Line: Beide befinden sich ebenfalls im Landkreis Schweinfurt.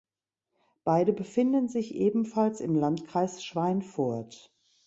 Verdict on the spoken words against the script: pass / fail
pass